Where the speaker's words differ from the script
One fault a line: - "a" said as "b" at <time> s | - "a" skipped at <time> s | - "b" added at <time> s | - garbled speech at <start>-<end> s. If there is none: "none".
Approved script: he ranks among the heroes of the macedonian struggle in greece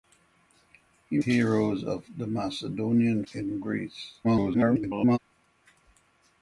- "ranks among the" skipped at 1.2 s
- "struggle" skipped at 3.2 s
- garbled speech at 4.2-5.2 s